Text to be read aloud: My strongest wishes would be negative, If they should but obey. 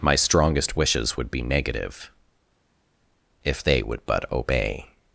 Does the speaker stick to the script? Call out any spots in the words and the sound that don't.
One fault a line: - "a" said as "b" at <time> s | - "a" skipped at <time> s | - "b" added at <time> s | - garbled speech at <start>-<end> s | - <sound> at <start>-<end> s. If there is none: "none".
- "should" said as "would" at 3.8 s